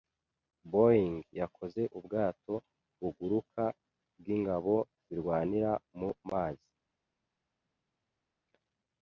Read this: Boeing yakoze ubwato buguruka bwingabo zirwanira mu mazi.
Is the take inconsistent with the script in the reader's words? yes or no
no